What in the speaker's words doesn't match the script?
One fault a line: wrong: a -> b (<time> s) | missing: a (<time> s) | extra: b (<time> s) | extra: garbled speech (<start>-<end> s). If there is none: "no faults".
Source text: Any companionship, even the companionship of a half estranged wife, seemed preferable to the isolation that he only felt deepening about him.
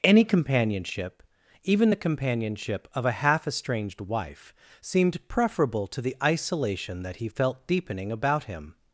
missing: only (7.3 s)